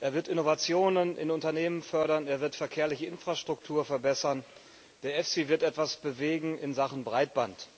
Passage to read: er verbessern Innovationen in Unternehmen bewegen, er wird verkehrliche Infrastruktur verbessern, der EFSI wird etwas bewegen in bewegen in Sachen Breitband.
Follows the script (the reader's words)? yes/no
no